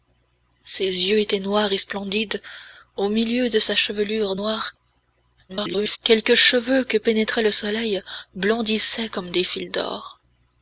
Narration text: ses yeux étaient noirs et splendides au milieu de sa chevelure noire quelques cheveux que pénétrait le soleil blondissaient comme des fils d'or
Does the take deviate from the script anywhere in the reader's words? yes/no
yes